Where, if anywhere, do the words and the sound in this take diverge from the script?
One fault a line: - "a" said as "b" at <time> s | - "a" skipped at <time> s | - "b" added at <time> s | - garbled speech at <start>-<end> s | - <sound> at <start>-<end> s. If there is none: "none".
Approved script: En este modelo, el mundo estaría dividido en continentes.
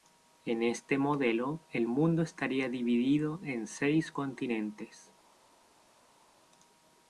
- "seis" added at 3.7 s